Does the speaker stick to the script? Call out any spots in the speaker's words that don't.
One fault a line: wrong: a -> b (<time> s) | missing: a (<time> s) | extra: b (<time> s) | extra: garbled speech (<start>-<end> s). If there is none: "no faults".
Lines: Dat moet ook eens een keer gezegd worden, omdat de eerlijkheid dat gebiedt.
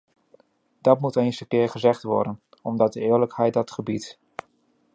missing: ook (1.2 s)